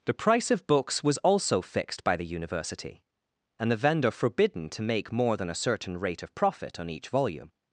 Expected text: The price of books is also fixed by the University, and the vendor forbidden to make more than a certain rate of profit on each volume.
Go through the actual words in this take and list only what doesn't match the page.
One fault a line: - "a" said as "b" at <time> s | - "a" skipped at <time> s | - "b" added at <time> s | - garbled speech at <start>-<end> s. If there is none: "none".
- "is" said as "was" at 1.0 s